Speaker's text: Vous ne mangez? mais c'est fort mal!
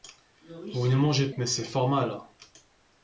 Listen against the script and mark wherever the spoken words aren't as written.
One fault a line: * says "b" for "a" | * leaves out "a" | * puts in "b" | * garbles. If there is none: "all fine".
all fine